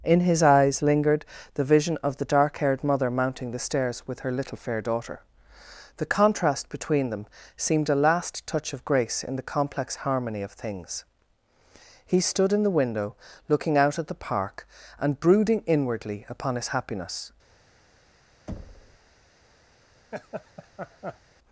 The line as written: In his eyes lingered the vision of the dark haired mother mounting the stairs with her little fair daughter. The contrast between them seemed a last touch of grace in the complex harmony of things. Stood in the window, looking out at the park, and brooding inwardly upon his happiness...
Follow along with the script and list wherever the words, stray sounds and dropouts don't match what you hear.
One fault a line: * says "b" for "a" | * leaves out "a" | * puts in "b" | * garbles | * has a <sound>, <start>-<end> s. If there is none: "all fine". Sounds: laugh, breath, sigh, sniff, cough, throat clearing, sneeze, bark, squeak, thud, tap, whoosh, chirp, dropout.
* puts in "He"
* has a thud, 18.5-19.0 s
* has a laugh, 20.1-21.2 s